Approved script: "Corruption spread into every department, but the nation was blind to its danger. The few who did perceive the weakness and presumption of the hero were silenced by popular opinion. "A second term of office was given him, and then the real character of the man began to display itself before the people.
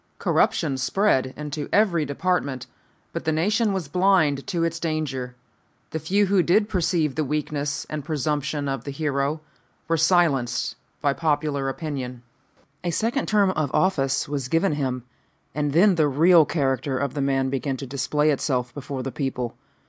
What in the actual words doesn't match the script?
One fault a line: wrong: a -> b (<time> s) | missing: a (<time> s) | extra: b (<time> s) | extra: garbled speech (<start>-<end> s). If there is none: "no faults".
no faults